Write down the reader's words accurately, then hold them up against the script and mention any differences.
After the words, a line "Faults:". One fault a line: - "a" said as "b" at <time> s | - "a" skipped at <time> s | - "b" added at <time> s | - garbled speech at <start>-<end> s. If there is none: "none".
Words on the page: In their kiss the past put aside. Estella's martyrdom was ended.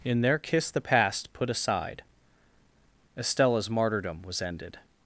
In their kiss the past put aside. Estella's martyrdom was ended.
Faults:
none